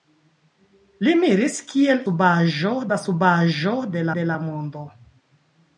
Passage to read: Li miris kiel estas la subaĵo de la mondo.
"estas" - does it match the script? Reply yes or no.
no